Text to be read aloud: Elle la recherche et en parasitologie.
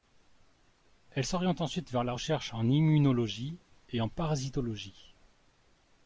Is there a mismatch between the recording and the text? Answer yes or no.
yes